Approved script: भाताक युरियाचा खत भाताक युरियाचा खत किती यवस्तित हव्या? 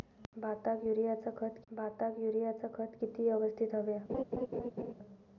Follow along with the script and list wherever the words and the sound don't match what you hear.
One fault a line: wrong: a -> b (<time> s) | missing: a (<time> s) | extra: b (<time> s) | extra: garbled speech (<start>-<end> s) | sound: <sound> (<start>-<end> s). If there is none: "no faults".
sound: laugh (4.1-4.9 s)